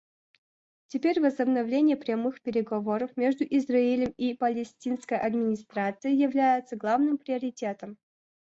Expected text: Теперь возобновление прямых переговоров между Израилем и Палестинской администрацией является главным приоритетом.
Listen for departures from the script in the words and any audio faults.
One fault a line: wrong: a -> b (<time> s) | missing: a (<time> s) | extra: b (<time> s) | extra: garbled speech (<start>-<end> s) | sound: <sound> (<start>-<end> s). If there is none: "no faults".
no faults